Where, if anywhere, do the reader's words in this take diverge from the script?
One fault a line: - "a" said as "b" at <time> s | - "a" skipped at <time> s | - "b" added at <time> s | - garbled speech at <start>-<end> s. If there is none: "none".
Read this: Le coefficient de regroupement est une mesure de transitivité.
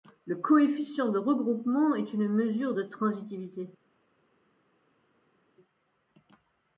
none